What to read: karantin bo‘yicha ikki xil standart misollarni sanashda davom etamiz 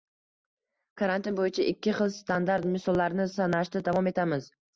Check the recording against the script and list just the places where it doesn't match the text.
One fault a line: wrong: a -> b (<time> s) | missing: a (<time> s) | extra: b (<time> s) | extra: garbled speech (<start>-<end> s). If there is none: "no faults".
no faults